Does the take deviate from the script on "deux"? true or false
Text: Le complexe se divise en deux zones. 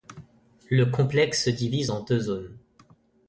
false